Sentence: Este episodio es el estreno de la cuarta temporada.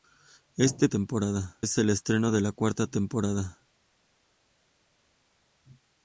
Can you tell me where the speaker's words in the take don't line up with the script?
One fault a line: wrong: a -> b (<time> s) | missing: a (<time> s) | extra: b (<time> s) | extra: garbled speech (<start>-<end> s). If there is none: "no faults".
wrong: episodio -> temporada (0.9 s)